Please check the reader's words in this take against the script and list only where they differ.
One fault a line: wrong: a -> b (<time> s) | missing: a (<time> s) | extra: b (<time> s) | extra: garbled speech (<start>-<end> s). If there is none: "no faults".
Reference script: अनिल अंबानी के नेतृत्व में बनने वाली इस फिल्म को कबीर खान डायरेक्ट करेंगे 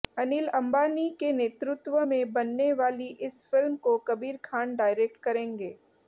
no faults